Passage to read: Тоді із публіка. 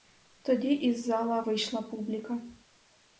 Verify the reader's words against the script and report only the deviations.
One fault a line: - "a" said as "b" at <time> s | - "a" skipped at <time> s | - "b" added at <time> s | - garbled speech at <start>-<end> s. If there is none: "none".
- "зала вийшла" added at 1.1 s